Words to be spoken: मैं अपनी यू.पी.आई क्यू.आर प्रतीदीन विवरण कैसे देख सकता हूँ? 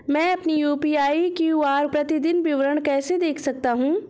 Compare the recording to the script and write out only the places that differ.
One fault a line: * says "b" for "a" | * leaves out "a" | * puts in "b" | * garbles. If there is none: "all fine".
all fine